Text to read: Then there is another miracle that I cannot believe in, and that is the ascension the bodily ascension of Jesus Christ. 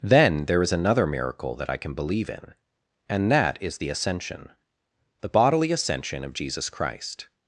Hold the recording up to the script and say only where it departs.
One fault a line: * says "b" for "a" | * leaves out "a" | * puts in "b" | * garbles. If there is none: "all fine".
* says "can" for "cannot"